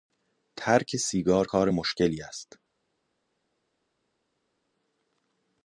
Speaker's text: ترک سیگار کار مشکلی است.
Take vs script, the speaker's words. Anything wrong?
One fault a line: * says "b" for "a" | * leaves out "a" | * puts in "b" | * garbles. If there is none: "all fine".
all fine